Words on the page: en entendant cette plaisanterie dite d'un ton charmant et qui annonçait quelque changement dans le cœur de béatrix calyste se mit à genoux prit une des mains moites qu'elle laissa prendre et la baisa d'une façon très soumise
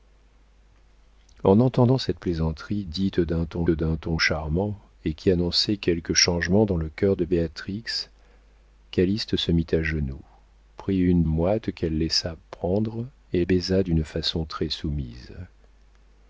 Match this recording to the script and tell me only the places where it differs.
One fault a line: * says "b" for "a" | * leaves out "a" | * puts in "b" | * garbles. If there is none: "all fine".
* puts in "d'un ton"
* leaves out "des mains"
* leaves out "la"